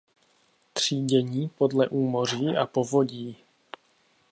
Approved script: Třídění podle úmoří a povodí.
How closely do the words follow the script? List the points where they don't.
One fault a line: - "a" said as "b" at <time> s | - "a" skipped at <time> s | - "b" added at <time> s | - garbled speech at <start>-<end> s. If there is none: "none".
none